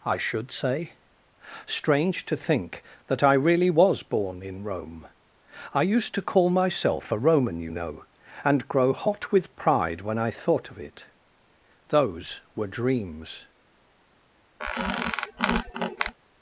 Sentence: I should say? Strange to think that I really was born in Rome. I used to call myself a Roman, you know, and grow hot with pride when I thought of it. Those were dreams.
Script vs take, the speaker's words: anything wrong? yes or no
no